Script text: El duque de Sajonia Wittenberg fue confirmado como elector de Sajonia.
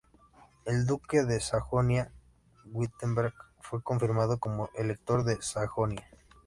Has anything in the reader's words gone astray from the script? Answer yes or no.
no